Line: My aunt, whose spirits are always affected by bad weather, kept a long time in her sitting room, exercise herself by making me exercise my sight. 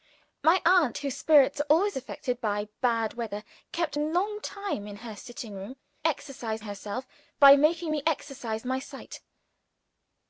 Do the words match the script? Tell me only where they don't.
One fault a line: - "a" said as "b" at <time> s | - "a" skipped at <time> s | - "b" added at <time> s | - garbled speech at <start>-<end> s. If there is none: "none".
none